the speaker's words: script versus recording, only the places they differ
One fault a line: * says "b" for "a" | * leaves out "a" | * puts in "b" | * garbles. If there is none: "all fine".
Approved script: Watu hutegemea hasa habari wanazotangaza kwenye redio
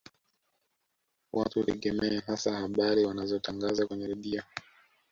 all fine